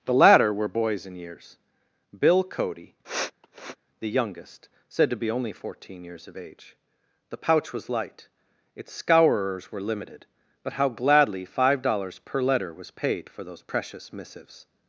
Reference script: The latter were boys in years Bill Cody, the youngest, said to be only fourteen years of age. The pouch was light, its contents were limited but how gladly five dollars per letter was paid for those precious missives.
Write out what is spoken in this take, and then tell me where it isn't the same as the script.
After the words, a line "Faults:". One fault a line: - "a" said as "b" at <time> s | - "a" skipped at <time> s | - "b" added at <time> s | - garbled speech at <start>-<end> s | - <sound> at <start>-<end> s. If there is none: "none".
The latter were boys in years Bill Cody, the youngest, said to be only fourteen years of age. The pouch was light, its scourers were limited but how gladly five dollars per letter was paid for those precious missives.
Faults:
- sniff at 3.0-3.8 s
- "contents" said as "scourers" at 8.9 s